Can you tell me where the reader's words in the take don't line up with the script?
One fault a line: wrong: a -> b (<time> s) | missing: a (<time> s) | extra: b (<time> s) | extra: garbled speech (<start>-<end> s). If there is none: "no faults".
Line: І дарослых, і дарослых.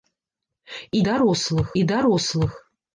no faults